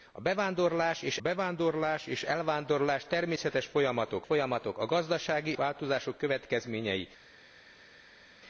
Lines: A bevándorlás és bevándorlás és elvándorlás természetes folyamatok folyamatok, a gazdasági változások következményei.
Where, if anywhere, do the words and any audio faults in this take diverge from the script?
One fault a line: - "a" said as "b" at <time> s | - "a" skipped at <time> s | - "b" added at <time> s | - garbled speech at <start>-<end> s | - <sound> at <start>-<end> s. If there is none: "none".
none